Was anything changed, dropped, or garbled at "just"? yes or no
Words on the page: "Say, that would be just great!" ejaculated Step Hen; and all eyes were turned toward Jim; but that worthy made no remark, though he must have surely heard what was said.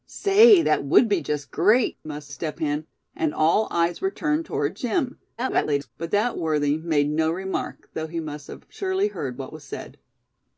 no